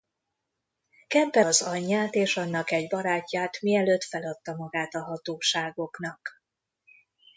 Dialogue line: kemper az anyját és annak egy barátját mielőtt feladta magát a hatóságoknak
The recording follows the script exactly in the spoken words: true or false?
true